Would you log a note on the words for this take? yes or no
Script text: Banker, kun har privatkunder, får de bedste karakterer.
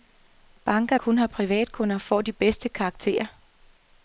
no